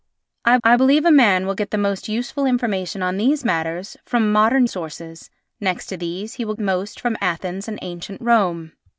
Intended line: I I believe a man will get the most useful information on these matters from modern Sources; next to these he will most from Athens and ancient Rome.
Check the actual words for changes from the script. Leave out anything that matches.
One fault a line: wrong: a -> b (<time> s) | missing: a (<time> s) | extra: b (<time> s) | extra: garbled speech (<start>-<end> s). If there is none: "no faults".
no faults